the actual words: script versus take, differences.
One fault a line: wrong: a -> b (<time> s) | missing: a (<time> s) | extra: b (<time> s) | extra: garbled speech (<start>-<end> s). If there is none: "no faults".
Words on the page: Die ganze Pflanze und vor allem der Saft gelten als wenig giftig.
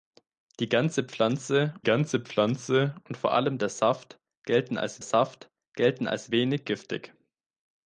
extra: ganze Pflanze (1.8 s)
extra: Saft gelten als (5.0 s)